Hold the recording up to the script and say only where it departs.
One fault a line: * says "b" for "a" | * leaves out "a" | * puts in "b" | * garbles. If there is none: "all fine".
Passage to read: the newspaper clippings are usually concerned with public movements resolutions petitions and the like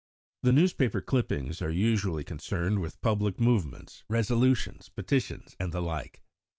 all fine